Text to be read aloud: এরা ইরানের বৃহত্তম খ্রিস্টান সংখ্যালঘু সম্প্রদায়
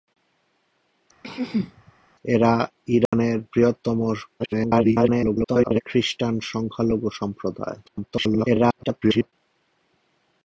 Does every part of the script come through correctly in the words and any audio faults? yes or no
no